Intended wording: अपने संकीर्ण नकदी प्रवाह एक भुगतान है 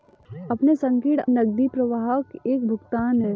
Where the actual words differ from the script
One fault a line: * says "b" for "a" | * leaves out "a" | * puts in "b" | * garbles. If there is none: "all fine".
all fine